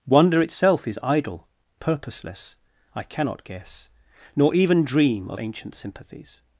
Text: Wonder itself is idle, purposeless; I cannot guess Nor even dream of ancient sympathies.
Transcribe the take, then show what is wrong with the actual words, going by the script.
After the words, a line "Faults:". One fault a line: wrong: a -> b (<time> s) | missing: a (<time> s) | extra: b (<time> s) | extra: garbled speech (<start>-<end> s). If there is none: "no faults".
Wonder itself is idle, purposeless; I cannot guess Nor even dream of ancient sympathies.
Faults:
no faults